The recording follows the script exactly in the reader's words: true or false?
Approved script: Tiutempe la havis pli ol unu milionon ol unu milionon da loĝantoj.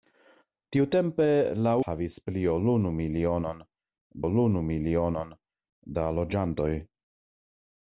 true